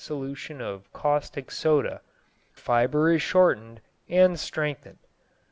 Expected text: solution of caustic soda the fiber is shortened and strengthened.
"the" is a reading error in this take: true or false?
true